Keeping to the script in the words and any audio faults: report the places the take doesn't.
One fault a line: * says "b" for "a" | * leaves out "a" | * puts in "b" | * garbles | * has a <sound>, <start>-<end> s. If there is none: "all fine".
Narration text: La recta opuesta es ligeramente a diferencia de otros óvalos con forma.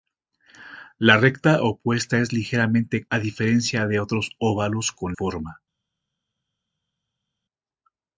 all fine